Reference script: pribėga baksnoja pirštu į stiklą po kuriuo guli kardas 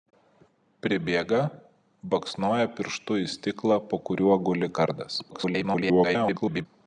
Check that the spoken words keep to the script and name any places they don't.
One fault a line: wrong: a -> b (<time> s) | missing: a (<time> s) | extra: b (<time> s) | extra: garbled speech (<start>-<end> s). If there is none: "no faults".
extra: garbled speech (5.3-6.7 s)